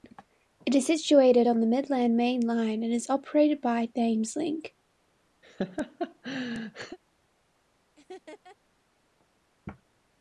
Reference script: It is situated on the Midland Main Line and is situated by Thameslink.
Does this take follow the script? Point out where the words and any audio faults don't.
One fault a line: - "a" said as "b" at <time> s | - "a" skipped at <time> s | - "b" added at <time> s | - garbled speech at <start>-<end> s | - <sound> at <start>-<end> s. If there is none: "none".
- "situated" said as "operated" at 3.1 s
- laugh at 5.4-7.0 s
- laugh at 8.0-8.6 s